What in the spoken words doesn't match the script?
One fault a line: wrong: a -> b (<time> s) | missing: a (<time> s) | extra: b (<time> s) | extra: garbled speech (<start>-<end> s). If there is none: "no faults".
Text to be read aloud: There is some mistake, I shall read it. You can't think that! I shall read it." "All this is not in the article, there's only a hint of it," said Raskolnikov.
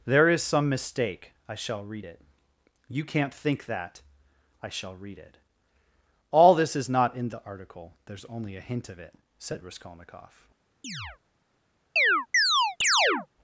no faults